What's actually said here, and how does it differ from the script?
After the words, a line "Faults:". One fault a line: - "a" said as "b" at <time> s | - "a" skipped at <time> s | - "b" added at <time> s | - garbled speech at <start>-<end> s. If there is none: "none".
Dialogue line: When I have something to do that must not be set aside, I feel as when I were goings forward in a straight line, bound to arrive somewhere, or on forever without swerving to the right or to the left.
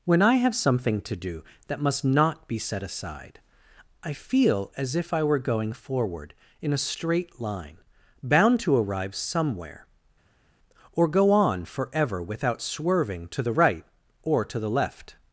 When I have something to do that must not be set aside, I feel as if I were going forward in a straight line, bound to arrive somewhere, or go on forever without swerving to the right or to the left.
Faults:
- "when" said as "if" at 5.0 s
- "goings" said as "going" at 5.4 s
- "go" added at 11.1 s